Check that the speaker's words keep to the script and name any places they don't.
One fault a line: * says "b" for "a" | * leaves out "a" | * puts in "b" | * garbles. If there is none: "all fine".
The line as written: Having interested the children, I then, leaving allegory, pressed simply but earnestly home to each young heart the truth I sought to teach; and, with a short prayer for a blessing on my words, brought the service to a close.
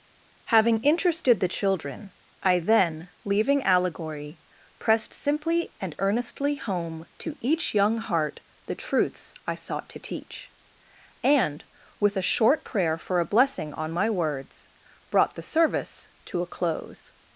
* says "and" for "but"
* says "truths" for "truth"